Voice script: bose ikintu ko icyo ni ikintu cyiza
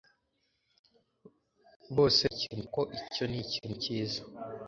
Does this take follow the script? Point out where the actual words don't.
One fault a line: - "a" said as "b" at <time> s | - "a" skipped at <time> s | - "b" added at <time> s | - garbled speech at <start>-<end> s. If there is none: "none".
none